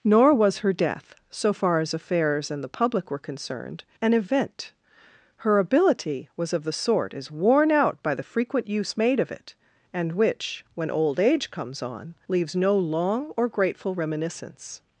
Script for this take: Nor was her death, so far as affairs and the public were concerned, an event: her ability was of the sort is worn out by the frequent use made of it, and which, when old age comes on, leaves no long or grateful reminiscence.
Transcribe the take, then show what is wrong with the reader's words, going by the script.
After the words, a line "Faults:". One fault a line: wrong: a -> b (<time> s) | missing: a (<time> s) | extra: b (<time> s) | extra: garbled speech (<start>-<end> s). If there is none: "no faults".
Nor was her death, so far as affairs and the public were concerned, an event: her ability was of the sort is worn out by the frequent use made of it, and which, when old age comes on, leaves no long or grateful reminiscence.
Faults:
no faults